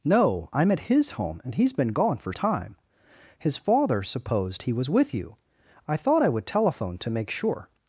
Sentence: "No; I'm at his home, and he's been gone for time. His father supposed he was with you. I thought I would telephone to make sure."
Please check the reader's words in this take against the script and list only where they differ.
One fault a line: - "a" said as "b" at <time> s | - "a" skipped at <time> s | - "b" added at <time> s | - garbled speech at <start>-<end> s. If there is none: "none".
none